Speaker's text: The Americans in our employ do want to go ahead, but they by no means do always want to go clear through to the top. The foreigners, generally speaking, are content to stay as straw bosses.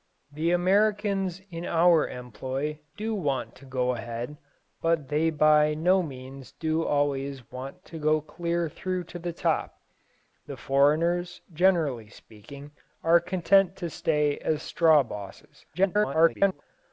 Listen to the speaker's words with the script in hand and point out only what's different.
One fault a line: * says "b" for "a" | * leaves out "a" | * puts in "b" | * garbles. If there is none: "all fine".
* garbles